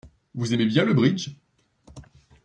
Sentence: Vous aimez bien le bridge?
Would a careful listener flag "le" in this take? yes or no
no